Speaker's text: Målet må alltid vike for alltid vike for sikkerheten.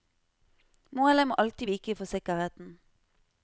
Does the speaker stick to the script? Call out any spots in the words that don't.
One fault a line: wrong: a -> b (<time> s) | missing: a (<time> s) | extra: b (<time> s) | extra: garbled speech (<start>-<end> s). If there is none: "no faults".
missing: alltid vike for (2.0 s)